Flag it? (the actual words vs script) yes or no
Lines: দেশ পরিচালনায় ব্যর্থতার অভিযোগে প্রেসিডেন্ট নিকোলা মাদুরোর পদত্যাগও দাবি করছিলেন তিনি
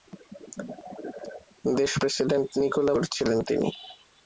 yes